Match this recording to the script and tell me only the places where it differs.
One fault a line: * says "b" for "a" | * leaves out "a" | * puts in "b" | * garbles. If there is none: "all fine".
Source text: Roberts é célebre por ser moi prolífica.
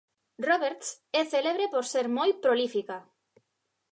all fine